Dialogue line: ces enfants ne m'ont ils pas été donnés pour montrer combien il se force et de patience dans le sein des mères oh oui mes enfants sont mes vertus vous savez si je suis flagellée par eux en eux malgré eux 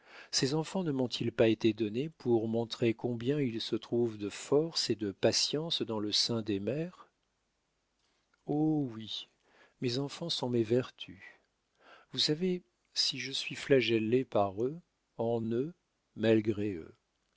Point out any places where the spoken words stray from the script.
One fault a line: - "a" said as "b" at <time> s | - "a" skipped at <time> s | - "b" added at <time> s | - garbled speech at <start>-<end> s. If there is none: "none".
- "trouve de" added at 3.8 s